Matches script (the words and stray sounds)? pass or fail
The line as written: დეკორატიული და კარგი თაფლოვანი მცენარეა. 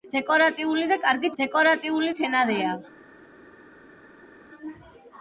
fail